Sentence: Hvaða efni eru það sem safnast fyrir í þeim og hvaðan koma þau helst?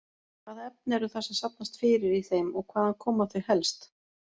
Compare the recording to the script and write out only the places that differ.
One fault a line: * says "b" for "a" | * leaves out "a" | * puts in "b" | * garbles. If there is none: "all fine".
all fine